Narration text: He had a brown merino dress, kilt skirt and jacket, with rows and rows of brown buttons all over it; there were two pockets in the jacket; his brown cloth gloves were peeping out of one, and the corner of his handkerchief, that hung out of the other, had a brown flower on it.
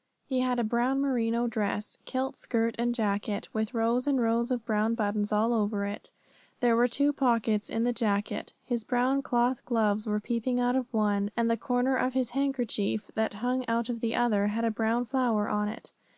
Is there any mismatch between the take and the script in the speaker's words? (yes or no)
no